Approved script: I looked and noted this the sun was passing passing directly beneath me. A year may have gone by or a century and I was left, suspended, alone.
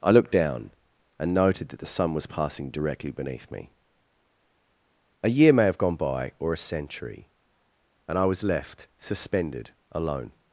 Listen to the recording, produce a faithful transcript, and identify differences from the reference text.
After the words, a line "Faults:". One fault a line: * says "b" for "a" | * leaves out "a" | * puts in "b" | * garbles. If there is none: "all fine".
I looked down, and noted that the sun was passing directly beneath me. A year may have gone by or a century and I was left, suspended, alone.
Faults:
* puts in "down"
* says "that" for "this"
* leaves out "passing"